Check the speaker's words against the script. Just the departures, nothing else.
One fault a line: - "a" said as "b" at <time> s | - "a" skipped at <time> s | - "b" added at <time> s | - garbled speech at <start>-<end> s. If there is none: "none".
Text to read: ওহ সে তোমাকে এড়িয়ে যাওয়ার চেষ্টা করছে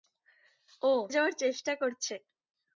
- "সে তোমাকে এড়িয়ে" skipped at 1.0 s